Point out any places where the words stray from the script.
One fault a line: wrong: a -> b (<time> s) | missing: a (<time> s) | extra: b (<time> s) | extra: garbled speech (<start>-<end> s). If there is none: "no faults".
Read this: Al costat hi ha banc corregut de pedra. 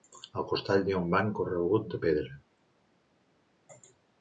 extra: un (1.0 s)